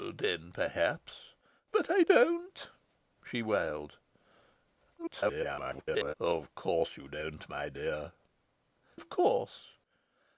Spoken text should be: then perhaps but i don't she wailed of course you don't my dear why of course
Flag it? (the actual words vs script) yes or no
yes